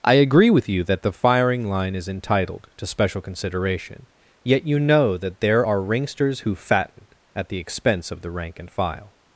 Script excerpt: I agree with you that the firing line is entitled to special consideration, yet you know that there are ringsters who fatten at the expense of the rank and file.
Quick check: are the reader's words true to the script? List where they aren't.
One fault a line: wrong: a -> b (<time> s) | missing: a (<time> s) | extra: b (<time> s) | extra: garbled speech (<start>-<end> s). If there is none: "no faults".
no faults